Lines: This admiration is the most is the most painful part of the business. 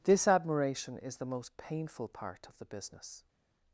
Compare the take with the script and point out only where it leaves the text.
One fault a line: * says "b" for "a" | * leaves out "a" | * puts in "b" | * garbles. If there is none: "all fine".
* leaves out "is the most"